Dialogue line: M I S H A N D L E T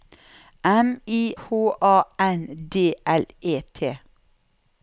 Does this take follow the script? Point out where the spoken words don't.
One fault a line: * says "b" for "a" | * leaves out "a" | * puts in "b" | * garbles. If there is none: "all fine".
* leaves out "S"